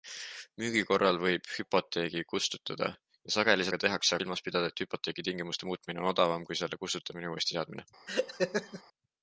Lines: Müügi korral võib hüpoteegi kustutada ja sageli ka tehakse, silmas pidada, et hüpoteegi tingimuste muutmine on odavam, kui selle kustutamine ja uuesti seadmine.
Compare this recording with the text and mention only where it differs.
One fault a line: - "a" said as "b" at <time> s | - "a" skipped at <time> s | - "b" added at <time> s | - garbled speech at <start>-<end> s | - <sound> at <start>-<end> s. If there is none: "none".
- laugh at 8.1-8.8 s